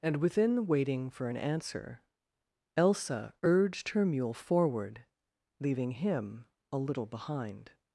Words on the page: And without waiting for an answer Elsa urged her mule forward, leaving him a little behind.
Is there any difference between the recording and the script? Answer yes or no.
yes